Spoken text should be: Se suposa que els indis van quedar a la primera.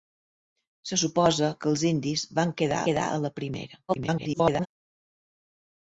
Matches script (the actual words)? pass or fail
fail